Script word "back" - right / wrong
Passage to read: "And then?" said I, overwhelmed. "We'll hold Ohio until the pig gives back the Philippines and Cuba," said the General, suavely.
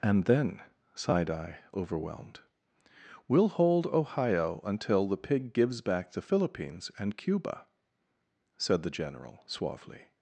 right